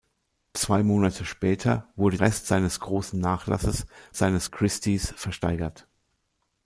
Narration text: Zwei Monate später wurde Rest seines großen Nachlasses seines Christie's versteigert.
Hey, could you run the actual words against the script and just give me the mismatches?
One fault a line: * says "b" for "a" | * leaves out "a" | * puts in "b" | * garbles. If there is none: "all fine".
all fine